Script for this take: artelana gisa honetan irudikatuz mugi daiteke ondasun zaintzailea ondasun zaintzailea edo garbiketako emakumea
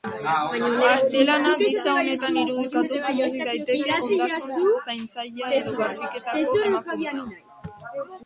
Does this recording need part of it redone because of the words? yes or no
yes